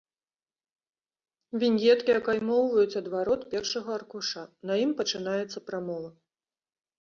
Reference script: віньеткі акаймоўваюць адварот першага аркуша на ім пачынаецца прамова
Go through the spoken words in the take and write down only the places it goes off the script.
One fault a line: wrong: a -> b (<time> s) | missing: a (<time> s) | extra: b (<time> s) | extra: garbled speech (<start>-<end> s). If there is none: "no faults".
no faults